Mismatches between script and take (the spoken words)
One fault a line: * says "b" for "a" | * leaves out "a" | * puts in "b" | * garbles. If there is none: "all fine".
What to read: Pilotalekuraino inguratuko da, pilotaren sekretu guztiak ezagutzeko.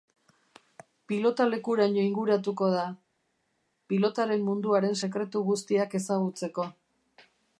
* puts in "munduaren"